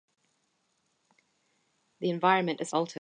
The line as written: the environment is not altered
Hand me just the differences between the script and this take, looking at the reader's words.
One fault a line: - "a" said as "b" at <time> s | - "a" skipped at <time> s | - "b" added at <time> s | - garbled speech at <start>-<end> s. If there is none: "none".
- "not" skipped at 2.7 s